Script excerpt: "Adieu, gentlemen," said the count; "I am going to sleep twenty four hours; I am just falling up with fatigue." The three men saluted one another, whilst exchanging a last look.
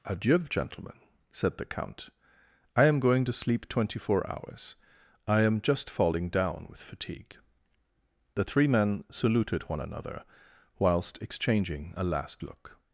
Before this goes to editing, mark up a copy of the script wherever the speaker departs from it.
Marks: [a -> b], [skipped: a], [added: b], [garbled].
"Adieu, gentlemen," said the count; "I am going to sleep twenty four hours; I am just falling [up -> down] with fatigue." The three men saluted one another, whilst exchanging a last look.